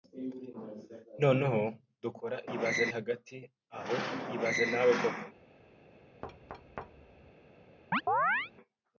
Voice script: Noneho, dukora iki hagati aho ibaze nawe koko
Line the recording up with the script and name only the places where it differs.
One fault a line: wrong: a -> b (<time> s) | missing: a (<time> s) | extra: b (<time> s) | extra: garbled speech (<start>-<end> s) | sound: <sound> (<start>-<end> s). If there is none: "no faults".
wrong: iki -> ibaze (2.6 s)
sound: thud (6.2-7.3 s)
sound: chirp (7.9-8.5 s)